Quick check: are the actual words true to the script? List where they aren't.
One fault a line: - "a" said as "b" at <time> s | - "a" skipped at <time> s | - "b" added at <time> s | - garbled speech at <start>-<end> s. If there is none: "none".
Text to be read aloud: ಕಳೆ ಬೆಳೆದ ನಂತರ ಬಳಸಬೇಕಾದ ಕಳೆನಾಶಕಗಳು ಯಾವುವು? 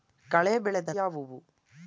- "ನಂತರ ಬಳಸಬೇಕಾದ ಕಳೆನಾಶಕಗಳು" skipped at 0.9 s